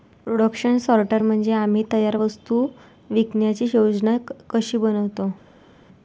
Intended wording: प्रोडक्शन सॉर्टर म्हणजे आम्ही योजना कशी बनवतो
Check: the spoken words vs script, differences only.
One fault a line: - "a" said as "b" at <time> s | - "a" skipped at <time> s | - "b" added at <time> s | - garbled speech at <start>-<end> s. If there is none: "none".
- "तयार वस्तू विकण्याची" added at 1.9 s